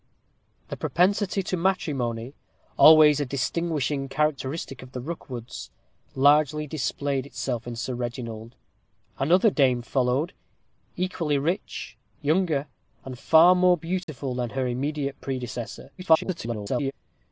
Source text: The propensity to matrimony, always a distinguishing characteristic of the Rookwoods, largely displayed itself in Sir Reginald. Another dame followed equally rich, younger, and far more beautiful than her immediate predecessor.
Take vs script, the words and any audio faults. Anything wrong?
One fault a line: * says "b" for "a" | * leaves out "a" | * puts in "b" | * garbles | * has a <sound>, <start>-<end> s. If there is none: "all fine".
* has a dropout, 14.0-14.1 s
* garbles